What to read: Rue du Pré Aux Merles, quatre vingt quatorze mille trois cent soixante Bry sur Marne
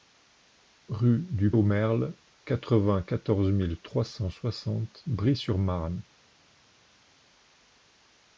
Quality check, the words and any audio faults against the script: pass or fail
fail